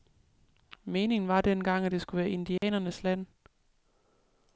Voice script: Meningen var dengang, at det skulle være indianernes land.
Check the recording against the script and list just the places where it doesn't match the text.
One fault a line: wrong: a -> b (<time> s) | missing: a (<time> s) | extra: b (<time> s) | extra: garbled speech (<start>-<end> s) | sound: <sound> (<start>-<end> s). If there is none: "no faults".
sound: dropout (2.6-2.6 s)